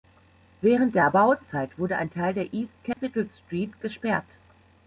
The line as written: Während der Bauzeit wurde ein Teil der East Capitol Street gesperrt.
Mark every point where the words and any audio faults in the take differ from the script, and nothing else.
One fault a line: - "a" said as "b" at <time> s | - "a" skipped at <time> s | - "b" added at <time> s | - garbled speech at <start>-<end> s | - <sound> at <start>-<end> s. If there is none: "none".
- dropout at 2.9-3.0 s